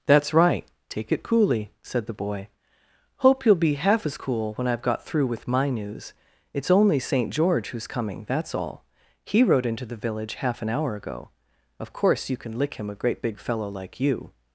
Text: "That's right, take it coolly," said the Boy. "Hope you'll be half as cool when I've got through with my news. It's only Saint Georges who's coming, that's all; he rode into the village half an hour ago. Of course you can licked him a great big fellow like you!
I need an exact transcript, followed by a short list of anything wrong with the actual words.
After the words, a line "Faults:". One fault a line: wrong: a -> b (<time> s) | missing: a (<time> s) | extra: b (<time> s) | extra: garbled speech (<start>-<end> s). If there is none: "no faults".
"That's right, take it coolly," said the Boy. "Hope you'll be half as cool when I've got through with my news. It's only Saint George who's coming, that's all; he rode into the village half an hour ago. Of course you can lick him a great big fellow like you!
Faults:
wrong: Georges -> George (7.3 s)
wrong: licked -> lick (12.6 s)